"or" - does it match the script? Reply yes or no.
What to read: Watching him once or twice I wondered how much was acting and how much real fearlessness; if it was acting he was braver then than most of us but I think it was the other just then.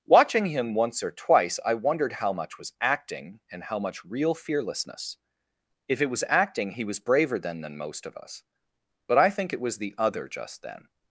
yes